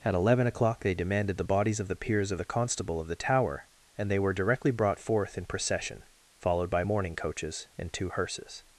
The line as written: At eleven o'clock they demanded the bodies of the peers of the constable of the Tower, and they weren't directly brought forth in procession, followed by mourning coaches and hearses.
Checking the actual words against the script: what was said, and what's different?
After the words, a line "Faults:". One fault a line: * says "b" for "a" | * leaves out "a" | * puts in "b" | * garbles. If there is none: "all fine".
At eleven o'clock they demanded the bodies of the peers of the constable of the Tower, and they were directly brought forth in procession, followed by mourning coaches and two hearses.
Faults:
* says "were" for "weren't"
* puts in "two"